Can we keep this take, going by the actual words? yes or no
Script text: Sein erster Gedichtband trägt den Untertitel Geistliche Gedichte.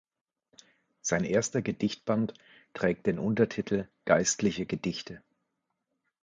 yes